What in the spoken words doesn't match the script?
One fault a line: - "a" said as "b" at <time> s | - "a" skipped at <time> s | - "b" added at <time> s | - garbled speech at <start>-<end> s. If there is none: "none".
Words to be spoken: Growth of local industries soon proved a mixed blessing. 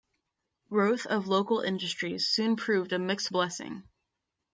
none